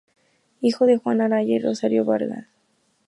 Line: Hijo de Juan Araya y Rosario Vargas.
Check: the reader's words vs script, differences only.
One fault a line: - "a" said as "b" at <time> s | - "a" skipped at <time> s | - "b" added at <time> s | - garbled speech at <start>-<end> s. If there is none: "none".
none